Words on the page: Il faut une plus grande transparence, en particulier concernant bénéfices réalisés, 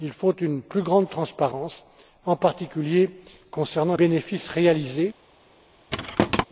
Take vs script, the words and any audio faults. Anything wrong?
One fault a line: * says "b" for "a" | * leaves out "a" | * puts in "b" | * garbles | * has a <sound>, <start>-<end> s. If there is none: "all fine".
* has a thud, 5.9-6.4 s